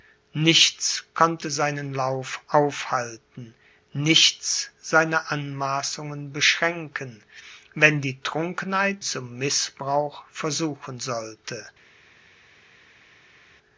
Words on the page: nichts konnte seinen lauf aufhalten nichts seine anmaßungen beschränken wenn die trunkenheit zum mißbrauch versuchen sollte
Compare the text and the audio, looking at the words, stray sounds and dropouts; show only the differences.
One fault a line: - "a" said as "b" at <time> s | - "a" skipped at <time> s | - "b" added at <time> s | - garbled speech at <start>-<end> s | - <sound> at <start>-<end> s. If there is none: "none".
none